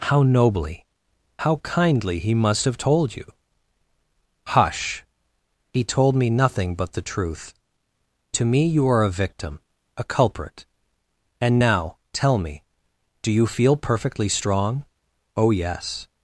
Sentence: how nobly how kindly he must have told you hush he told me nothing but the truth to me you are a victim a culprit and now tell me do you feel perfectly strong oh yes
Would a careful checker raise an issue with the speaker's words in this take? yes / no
no